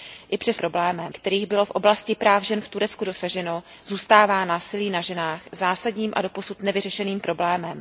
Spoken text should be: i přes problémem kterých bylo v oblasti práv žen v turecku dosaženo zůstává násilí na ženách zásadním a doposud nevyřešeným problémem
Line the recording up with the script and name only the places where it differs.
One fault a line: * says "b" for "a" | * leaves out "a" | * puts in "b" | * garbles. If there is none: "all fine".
all fine